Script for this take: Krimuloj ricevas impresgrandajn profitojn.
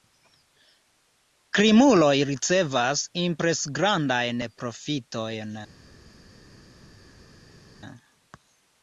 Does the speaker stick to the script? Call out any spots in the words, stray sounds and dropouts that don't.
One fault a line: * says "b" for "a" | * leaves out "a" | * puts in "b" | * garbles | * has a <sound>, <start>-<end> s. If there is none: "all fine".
all fine